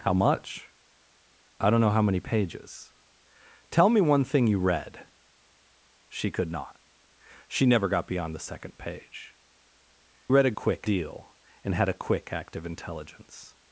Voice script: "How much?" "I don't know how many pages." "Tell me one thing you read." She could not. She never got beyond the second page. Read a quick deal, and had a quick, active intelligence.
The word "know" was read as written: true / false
true